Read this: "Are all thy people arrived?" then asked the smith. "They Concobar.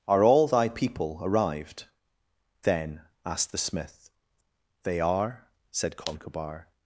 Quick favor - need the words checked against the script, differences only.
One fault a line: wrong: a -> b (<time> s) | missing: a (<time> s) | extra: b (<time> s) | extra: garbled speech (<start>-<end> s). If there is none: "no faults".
extra: are said (5.0 s)